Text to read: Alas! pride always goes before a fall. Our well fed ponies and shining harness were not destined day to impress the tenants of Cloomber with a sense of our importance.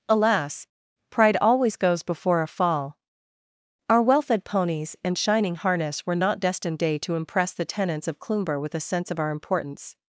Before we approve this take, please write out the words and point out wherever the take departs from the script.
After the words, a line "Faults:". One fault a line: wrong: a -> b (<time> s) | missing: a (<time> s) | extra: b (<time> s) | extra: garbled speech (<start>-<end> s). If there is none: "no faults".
Alas! pride always goes before a fall. Our well fed ponies and shining harness were not destined day to impress the tenants of Cloomber with a sense of our importance.
Faults:
no faults